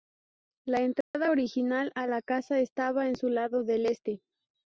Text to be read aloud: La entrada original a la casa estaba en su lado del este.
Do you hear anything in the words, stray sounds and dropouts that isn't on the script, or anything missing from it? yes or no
yes